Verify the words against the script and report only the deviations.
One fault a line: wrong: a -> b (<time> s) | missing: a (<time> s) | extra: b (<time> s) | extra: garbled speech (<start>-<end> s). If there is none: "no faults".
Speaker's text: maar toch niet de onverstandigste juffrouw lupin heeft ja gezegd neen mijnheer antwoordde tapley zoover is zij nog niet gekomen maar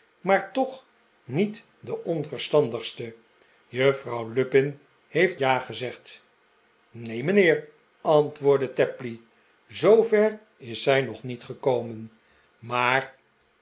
no faults